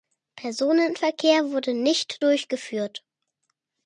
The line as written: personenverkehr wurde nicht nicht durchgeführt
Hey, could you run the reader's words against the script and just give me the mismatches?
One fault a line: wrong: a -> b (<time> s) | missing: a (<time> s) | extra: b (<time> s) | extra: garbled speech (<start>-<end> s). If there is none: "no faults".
missing: nicht (2.3 s)